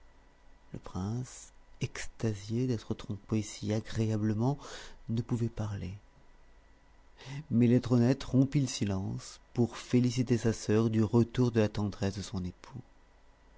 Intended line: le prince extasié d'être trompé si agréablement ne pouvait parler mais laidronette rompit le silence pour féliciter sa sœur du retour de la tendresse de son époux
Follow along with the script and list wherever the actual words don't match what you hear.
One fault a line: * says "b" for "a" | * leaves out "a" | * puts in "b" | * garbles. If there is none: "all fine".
all fine